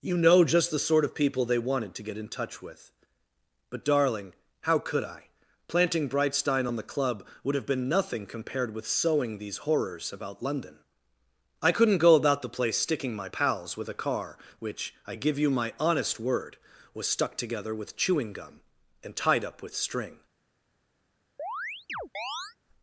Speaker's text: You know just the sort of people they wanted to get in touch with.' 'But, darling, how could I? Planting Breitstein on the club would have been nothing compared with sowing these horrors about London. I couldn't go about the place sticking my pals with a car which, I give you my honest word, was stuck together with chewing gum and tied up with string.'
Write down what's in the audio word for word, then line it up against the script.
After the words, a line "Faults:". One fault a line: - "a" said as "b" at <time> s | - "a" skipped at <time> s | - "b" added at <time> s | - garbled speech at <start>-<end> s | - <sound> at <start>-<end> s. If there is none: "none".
You know just the sort of people they wanted to get in touch with.' 'But, darling, how could I? Planting Breitstein on the club would have been nothing compared with sowing these horrors about London. I couldn't go about the place sticking my pals with a car which, I give you my honest word, was stuck together with chewing gum and tied up with string.'
Faults:
- chirp at 21.4-22.6 s